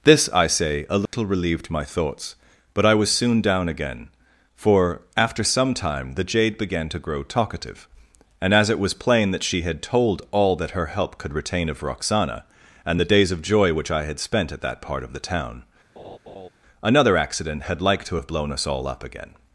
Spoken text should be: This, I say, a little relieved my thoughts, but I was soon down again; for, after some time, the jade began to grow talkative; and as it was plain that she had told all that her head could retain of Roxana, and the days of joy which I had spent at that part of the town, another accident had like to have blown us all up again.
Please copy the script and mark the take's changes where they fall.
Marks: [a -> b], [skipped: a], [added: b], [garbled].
This, I say, a little relieved my thoughts, but I was soon down again; for, after some time, the jade began to grow talkative; and as it was plain that she had told all that her [head -> help] could retain of Roxana, and the days of joy which I had spent at that part of the town, another accident had like to have blown us all up again.